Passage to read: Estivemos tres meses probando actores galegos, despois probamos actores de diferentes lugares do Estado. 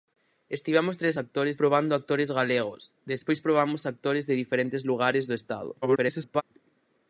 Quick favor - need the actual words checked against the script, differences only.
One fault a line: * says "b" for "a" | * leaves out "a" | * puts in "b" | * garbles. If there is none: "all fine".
* says "actores" for "meses"
* garbles